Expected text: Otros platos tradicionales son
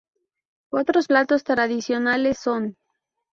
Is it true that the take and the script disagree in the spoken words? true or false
false